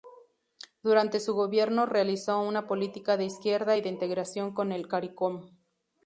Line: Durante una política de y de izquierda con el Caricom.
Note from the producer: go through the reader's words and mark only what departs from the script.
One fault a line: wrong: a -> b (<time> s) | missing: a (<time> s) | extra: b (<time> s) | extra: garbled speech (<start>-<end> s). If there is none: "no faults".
extra: su gobierno realizó (1.2 s)
extra: izquierda (3.2 s)
wrong: izquierda -> integración (3.9 s)